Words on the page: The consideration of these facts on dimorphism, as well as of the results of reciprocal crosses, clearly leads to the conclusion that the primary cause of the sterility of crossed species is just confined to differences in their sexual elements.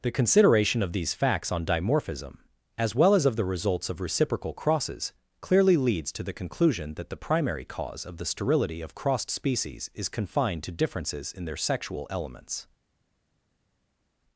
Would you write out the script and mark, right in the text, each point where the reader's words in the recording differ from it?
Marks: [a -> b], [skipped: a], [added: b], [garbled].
The consideration of these facts on dimorphism, as well as of the results of reciprocal crosses, clearly leads to the conclusion that the primary cause of the sterility of crossed species is [skipped: just] confined to differences in their sexual elements.